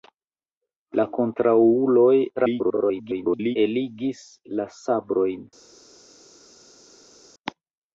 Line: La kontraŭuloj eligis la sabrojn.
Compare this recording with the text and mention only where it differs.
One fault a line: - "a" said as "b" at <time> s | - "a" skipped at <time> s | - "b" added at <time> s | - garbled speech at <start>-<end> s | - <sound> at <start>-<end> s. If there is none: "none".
- garbled speech at 2.4-3.6 s